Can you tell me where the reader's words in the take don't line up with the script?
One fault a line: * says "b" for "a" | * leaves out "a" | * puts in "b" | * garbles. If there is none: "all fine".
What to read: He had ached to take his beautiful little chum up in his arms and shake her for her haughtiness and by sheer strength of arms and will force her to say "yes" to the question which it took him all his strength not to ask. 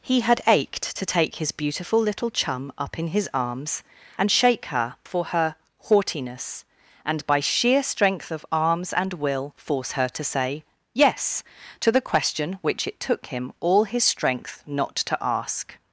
all fine